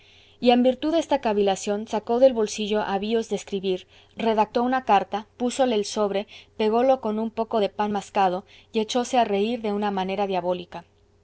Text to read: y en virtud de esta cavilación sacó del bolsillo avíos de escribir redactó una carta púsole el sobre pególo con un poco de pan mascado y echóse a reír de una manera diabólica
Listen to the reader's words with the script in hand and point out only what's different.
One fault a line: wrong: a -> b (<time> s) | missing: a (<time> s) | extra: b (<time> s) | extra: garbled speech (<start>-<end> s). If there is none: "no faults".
no faults